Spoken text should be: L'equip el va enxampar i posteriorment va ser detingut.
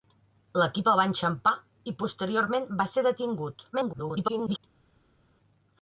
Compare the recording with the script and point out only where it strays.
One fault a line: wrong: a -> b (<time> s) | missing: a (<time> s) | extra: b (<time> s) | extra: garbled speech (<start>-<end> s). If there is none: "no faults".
extra: garbled speech (3.7-4.6 s)